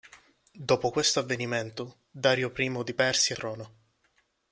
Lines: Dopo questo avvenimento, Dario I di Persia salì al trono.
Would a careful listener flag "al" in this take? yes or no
yes